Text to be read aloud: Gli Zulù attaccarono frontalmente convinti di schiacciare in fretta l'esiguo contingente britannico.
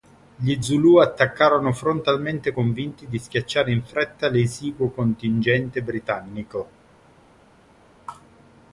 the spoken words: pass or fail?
pass